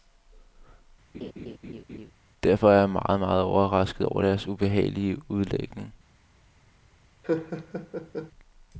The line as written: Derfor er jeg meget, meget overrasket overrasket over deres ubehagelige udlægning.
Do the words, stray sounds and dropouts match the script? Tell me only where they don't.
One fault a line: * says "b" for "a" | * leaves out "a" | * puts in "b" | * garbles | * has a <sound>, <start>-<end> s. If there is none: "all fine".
* has a laugh, 1.1-2.1 s
* leaves out "overrasket"
* has a laugh, 7.2-8.3 s